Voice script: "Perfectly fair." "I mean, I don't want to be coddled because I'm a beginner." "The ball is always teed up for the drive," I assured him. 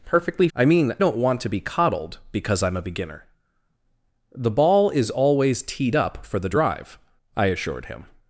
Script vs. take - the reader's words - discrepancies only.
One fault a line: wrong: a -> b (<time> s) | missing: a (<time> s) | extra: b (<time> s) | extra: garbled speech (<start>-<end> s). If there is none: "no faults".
missing: fair (0.5 s)
missing: I (0.9 s)